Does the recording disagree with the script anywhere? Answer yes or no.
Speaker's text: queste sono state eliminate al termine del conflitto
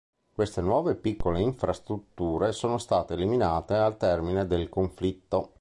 yes